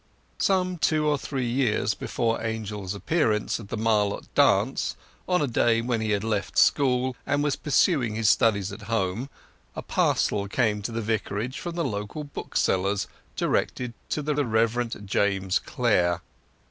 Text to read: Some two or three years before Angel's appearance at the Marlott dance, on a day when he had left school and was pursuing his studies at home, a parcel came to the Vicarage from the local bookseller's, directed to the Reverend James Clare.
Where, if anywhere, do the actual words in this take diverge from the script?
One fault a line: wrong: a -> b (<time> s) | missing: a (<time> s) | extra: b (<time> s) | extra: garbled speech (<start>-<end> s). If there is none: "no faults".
extra: the (14.3 s)